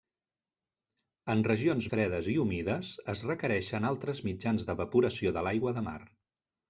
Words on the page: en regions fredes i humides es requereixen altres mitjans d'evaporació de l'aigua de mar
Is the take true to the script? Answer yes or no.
yes